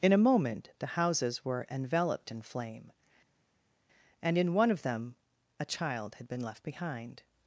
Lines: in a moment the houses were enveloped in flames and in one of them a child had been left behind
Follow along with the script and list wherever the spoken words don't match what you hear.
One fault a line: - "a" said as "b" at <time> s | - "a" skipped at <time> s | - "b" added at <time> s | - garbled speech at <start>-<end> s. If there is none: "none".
- "flames" said as "flame" at 2.4 s